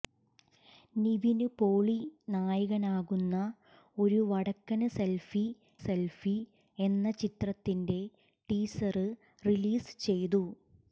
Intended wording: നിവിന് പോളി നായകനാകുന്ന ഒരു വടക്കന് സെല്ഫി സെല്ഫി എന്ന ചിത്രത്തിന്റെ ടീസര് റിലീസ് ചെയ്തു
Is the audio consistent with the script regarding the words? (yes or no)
yes